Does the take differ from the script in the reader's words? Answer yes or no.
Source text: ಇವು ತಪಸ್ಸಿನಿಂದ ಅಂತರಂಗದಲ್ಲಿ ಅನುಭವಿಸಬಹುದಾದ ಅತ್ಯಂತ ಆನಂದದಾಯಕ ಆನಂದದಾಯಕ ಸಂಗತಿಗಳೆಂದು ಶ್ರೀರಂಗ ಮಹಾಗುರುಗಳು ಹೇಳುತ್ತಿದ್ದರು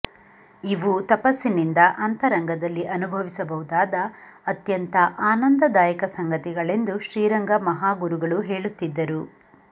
yes